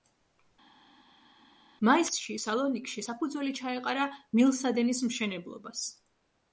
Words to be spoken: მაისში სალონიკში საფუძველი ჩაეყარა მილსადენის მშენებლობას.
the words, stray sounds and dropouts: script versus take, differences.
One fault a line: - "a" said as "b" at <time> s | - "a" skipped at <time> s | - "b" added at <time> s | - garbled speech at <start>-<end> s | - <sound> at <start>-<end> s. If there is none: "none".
none